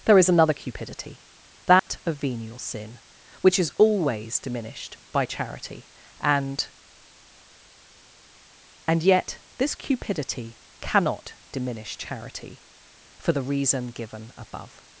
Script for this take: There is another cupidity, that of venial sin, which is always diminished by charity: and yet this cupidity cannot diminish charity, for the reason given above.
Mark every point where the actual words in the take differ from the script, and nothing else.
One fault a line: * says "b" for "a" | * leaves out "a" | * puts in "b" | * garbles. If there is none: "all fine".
* puts in "and"